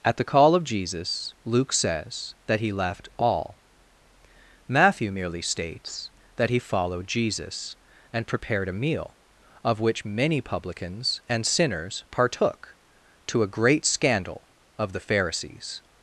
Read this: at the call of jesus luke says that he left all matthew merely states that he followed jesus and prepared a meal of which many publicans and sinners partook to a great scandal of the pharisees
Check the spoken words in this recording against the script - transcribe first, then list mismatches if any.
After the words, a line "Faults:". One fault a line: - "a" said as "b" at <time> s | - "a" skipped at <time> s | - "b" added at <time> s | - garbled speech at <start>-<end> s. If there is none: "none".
at the call of jesus luke says that he left all matthew merely states that he followed jesus and prepared a meal of which many publicans and sinners partook to a great scandal of the pharisees
Faults:
none